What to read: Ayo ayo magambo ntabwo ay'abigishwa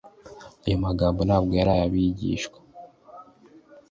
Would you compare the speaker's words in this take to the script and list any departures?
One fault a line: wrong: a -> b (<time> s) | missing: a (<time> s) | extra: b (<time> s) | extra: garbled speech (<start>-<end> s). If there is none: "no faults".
missing: ayo (0.8 s)
extra: yari (1.6 s)